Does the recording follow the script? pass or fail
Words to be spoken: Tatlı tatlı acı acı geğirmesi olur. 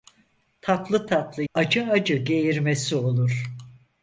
pass